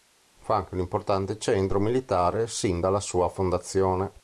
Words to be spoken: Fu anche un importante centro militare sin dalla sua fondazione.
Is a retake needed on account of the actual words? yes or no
no